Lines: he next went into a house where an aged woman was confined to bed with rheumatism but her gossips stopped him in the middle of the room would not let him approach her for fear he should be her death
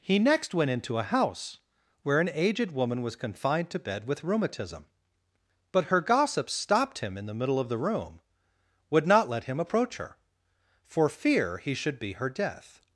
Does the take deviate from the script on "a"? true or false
false